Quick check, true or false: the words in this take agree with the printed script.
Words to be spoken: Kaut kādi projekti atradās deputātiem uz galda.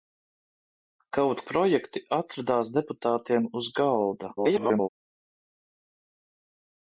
false